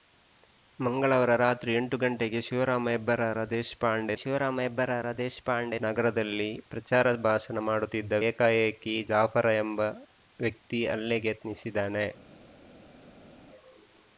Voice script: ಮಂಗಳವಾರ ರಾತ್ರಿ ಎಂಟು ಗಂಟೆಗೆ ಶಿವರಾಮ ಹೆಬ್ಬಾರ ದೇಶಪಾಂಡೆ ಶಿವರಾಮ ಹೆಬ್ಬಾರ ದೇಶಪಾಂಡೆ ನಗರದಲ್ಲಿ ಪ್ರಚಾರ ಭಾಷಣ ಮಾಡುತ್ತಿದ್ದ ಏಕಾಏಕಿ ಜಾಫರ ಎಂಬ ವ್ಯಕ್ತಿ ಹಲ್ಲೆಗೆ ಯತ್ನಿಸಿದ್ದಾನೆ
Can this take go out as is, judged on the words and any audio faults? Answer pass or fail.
pass